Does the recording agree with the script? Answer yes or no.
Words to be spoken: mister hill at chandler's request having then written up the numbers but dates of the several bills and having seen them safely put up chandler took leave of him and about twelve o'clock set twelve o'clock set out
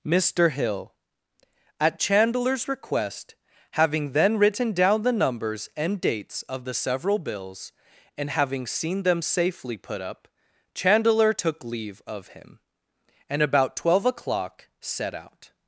no